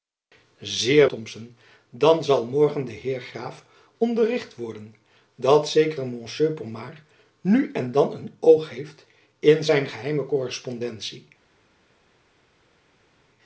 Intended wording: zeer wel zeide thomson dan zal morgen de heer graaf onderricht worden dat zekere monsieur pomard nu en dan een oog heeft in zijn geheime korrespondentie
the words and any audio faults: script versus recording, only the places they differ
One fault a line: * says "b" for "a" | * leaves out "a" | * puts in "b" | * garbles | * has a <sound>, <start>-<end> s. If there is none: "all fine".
* leaves out "wel zeide"